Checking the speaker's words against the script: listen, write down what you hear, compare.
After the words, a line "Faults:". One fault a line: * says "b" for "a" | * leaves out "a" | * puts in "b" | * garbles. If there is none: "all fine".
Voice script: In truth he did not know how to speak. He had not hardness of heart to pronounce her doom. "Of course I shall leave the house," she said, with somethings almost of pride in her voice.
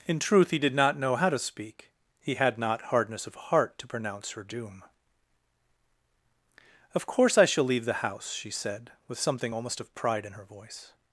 In truth he did not know how to speak. He had not hardness of heart to pronounce her doom. "Of course I shall leave the house," she said, with something almost of pride in her voice.
Faults:
* says "something" for "somethings"